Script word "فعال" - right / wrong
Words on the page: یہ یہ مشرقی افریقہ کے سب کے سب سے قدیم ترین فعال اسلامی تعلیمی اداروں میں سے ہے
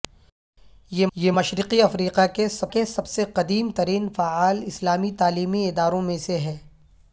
right